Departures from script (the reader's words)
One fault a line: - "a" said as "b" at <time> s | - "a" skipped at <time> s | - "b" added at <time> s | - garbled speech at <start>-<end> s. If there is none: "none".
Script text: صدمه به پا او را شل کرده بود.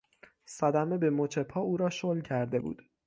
- "مچ" added at 1.1 s